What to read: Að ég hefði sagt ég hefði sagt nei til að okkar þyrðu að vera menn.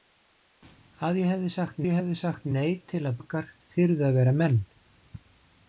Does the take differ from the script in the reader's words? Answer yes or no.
no